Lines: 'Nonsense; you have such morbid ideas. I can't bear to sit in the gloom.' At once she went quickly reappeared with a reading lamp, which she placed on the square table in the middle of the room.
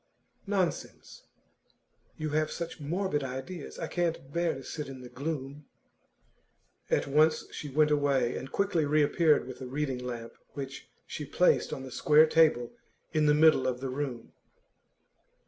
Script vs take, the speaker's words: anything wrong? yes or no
yes